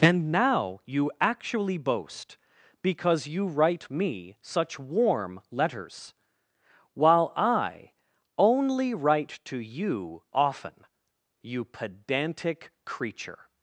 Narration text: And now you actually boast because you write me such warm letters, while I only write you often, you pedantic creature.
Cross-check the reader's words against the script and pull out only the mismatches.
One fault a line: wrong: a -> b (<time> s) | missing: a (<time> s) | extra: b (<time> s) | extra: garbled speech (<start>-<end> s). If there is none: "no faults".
extra: to (9.4 s)